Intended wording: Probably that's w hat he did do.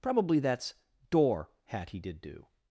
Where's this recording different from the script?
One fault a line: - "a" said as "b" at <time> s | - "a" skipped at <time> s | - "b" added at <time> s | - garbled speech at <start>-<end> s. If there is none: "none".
- "w" said as "door" at 1.1 s